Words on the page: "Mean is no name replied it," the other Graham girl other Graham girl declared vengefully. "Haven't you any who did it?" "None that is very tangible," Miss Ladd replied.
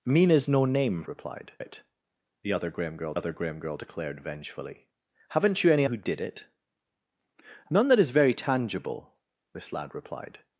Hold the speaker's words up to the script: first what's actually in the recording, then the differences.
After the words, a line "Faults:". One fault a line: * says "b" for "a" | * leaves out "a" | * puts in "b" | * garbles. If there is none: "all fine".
"Mean is no name replied it," the other Graham girl other Graham girl declared vengefully. "Haven't you any who did it?" "None that is very tangible," Miss Ladd replied.
Faults:
all fine